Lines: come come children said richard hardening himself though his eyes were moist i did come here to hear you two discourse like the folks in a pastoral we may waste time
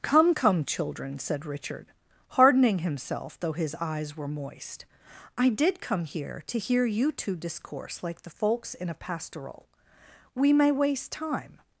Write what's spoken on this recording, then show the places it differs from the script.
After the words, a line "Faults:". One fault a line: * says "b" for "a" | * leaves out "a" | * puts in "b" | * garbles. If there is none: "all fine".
come come children said richard hardening himself though his eyes were moist i did come here to hear you two discourse like the folks in a pastoral we may waste time
Faults:
all fine